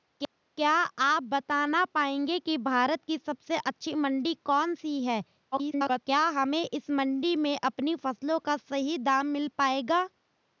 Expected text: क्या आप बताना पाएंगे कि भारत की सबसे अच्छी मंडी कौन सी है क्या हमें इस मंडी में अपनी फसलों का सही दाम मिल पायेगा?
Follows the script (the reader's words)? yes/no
no